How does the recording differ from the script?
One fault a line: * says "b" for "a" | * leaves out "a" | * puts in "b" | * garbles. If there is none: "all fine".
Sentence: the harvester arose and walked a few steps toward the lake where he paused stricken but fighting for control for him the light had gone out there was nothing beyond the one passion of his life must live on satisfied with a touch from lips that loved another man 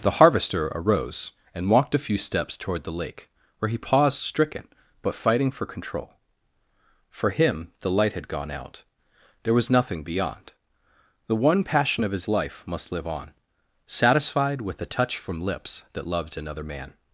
all fine